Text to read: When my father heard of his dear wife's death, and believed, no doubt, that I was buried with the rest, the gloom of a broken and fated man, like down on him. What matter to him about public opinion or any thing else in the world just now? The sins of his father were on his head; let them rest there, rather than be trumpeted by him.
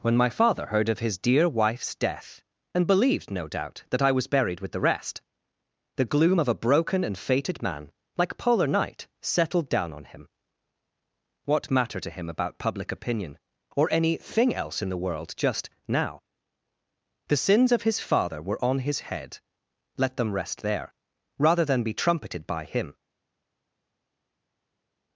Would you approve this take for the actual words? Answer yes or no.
no